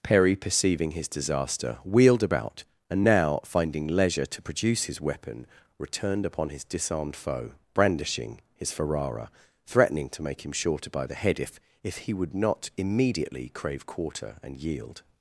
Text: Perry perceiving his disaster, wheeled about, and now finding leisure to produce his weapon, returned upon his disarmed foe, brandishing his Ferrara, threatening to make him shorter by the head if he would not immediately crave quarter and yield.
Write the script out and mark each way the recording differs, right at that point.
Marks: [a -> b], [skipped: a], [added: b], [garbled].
Perry perceiving his disaster, wheeled about, and now finding leisure to produce his weapon, returned upon his disarmed foe, brandishing his Ferrara, threatening to make him shorter by the head if [added: if] he would not immediately crave quarter and yield.